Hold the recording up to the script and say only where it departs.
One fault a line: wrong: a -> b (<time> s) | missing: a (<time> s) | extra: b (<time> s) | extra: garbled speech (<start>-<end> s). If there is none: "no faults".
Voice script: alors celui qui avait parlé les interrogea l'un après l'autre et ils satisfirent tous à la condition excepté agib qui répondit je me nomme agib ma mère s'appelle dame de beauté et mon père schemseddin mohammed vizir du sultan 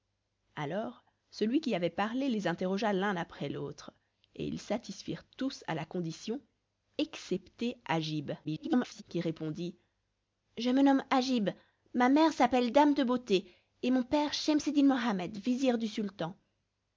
extra: garbled speech (8.4-9.0 s)